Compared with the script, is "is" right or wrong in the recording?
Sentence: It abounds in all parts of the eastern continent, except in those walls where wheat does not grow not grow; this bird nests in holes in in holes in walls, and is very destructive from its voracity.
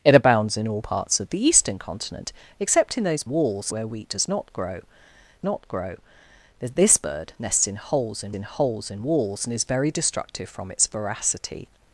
right